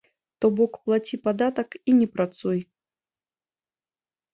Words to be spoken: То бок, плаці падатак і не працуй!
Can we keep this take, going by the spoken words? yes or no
yes